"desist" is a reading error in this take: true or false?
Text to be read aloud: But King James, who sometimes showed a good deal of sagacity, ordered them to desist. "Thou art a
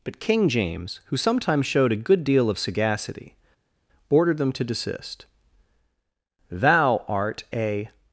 false